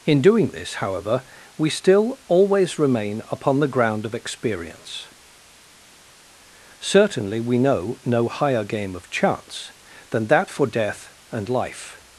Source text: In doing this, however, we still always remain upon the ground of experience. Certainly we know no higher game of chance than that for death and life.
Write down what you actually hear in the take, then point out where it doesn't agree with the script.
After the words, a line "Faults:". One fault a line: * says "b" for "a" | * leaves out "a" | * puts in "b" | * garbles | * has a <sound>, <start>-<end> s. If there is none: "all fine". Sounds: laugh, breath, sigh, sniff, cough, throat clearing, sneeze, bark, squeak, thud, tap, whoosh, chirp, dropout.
In doing this, however, we still always remain upon the ground of experience. Certainly we know no higher game of chance than that for death and life.
Faults:
all fine